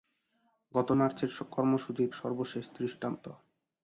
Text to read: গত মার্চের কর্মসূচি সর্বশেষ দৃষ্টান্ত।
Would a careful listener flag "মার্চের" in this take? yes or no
no